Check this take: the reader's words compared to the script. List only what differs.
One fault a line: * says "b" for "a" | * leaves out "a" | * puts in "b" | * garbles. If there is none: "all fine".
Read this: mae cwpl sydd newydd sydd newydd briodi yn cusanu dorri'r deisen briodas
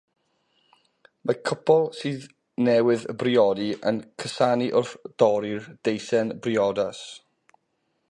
* leaves out "sydd newydd"
* puts in "wrth"